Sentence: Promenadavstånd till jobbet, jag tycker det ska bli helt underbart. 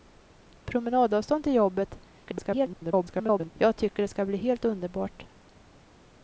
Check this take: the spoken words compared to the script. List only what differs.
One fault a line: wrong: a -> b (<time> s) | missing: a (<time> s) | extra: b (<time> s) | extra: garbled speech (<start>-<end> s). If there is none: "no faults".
extra: garbled speech (2.2-3.5 s)